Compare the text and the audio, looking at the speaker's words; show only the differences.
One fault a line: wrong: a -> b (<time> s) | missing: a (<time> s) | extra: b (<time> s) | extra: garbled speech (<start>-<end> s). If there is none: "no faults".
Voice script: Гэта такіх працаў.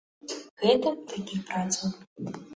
no faults